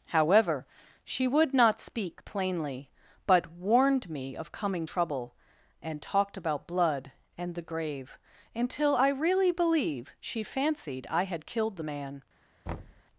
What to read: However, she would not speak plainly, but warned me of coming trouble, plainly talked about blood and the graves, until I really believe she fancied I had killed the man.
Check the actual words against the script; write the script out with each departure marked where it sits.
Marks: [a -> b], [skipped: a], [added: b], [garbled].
However, she would not speak plainly, but warned me of coming trouble, [plainly -> and] talked about blood and the [graves, -> grave] until I really believe she fancied I had killed the man.